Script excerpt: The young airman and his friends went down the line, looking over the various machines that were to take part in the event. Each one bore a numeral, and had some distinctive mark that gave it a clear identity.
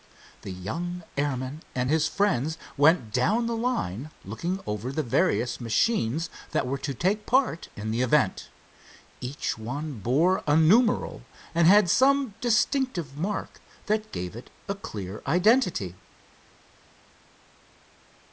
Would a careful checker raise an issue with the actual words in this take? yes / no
no